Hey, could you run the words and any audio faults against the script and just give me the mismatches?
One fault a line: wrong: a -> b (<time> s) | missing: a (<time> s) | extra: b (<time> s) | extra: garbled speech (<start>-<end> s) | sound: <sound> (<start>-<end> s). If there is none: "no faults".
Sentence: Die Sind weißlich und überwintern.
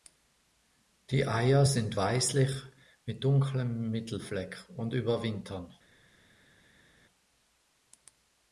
extra: Eier (1.3 s)
extra: mit dunklem Mittelfleck (3.0 s)